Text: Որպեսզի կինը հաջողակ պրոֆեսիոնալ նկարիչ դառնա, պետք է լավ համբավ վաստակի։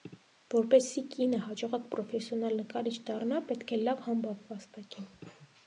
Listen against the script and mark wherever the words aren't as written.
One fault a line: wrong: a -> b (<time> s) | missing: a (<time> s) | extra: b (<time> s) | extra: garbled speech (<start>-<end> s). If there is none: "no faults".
no faults